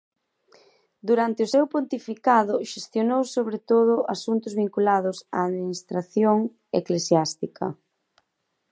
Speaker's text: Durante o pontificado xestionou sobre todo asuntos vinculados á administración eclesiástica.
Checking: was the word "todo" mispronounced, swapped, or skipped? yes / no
no